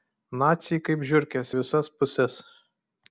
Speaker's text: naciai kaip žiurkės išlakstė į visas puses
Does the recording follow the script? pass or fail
fail